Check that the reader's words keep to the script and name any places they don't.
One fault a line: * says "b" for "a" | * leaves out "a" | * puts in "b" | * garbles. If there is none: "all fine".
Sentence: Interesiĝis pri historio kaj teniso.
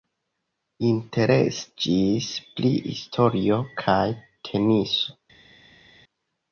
all fine